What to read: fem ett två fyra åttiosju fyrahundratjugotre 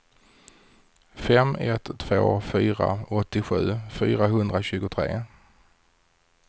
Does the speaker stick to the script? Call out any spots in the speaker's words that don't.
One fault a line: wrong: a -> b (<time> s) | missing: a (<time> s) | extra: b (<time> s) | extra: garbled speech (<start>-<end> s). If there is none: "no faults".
no faults